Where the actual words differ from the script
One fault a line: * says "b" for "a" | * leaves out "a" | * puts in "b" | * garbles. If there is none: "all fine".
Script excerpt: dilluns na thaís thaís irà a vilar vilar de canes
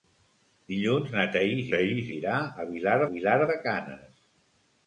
all fine